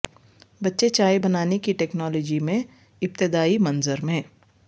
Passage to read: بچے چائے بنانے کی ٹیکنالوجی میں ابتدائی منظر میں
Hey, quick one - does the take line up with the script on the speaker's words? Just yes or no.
yes